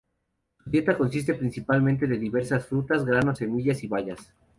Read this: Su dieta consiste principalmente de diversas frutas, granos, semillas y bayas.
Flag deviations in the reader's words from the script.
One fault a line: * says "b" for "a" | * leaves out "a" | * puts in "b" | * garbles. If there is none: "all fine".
all fine